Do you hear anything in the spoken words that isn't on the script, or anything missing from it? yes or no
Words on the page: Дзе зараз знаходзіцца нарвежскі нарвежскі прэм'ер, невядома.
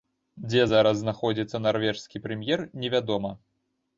yes